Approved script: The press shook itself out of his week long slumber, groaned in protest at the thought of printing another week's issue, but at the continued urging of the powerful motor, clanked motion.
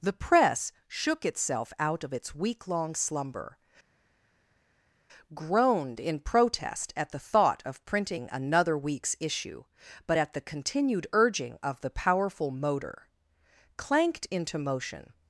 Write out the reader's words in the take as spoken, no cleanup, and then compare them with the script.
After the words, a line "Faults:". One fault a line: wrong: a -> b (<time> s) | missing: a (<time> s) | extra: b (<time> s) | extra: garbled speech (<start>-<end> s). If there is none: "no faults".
The press shook itself out of its week long slumber, groaned in protest at the thought of printing another week's issue, but at the continued urging of the powerful motor, clanked into motion.
Faults:
wrong: his -> its (2.1 s)
extra: into (14.3 s)